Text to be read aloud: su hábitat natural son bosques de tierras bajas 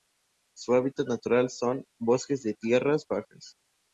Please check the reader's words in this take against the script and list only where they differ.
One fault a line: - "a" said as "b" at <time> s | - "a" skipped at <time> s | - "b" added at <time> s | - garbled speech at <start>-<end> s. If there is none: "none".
none